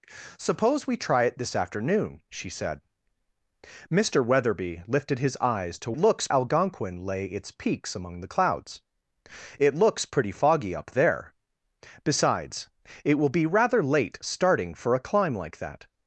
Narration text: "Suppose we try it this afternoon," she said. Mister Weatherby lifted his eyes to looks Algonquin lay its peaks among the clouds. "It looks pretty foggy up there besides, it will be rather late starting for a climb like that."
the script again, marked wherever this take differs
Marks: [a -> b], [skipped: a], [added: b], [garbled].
"Suppose we try it this afternoon," she said. Mister Weatherby lifted his eyes to looks Algonquin lay its peaks among the clouds. "It looks pretty foggy up there besides, it will be rather late starting for a climb like that."